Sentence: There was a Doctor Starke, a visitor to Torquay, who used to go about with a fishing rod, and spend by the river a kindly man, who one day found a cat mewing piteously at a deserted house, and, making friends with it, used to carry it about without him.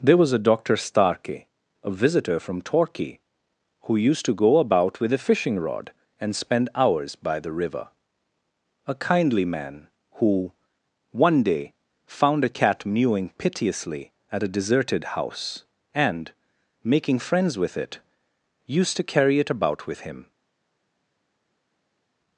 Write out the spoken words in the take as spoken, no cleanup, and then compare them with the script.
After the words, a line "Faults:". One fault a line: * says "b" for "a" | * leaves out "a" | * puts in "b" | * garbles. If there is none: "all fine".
There was a Doctor Starke, a visitor from Torquay, who used to go about with a fishing rod, and spend hours by the river a kindly man, who one day found a cat mewing piteously at a deserted house, and, making friends with it, used to carry it about with him.
Faults:
* says "from" for "to"
* puts in "hours"
* says "with" for "without"